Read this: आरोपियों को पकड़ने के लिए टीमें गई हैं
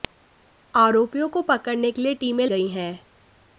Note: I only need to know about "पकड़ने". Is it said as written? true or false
true